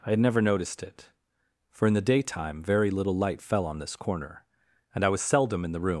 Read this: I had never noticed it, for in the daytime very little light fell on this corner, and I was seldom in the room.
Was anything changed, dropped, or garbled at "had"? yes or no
no